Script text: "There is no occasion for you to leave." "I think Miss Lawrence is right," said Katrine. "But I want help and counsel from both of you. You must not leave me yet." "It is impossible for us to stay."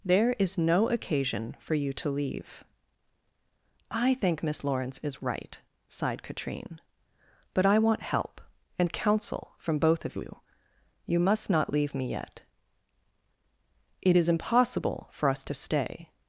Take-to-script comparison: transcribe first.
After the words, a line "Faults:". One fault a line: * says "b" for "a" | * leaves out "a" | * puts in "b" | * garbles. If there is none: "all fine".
"There is no occasion for you to leave." "I think Miss Lawrence is right," sighed Katrine. "But I want help and counsel from both of you. You must not leave me yet." "It is impossible for us to stay."
Faults:
* says "sighed" for "said"